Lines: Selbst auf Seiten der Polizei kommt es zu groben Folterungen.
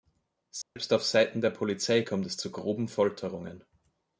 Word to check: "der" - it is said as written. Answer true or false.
true